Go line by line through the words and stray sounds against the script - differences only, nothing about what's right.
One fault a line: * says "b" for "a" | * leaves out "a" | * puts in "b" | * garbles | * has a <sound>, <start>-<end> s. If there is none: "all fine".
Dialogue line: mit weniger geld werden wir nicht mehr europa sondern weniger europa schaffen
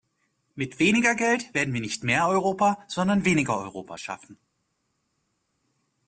all fine